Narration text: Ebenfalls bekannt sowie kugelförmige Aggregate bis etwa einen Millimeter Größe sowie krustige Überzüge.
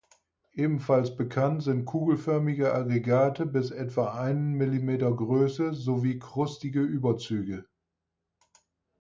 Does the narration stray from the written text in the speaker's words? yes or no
yes